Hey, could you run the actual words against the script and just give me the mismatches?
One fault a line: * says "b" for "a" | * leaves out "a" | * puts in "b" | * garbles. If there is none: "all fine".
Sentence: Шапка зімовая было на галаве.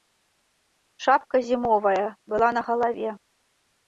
* says "была" for "было"